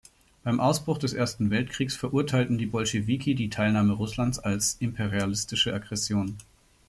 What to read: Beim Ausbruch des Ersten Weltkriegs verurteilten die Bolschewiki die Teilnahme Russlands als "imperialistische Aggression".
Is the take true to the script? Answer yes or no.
yes